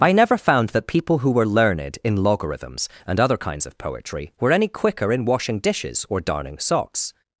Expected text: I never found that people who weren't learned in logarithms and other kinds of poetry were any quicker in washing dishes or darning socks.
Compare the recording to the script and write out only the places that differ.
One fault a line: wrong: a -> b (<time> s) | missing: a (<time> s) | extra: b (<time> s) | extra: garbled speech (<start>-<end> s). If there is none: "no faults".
wrong: weren't -> were (1.3 s)